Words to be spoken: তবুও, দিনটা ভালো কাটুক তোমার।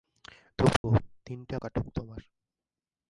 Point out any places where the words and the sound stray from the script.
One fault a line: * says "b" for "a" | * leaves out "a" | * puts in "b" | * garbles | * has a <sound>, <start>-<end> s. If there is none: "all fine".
* has a dropout, 0.8-0.8 s
* leaves out "ভালো"